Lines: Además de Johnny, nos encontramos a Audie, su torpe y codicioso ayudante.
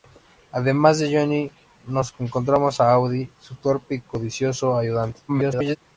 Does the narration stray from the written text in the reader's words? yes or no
yes